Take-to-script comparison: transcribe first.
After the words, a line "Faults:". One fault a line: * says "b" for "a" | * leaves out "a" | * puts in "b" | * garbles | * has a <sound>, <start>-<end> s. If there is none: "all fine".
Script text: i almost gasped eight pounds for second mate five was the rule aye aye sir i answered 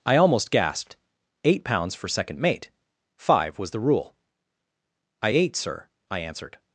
i almost gasped eight pounds for second mate five was the rule i ate sir i answered
Faults:
* says "i ate" for "aye aye"